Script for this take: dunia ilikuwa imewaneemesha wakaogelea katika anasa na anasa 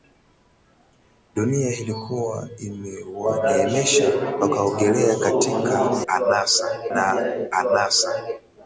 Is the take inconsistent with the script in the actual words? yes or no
no